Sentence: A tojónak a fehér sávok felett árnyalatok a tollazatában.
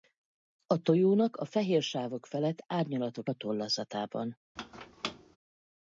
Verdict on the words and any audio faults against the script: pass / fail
fail